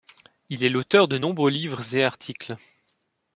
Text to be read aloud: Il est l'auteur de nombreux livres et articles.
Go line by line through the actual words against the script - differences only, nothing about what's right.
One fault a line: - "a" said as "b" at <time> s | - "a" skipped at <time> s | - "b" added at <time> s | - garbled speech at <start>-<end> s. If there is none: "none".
none